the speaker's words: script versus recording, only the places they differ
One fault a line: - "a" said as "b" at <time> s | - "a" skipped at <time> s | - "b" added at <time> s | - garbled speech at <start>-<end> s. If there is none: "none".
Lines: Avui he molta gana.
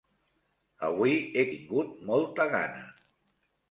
- "tingut" added at 1.5 s